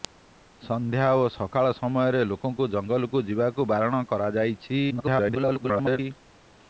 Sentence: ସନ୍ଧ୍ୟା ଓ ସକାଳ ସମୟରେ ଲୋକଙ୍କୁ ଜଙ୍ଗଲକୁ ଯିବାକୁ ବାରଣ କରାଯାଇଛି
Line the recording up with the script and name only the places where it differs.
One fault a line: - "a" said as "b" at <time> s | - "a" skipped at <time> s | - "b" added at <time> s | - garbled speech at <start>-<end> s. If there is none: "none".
- garbled speech at 4.9-6.0 s